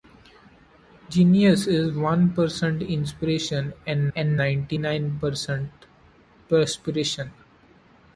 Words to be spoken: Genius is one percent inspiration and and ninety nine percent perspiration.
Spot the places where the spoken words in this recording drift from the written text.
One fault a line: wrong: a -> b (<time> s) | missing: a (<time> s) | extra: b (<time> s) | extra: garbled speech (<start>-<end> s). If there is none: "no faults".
no faults